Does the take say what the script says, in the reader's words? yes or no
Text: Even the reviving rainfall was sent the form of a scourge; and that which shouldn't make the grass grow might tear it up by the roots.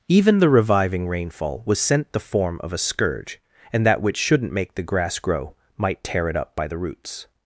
yes